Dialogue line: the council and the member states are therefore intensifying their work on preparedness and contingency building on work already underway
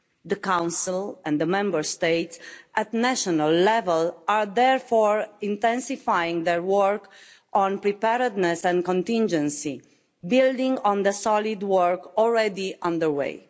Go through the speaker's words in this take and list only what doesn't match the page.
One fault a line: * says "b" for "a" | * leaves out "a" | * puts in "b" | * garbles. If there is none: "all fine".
* puts in "at national level"
* puts in "the solid"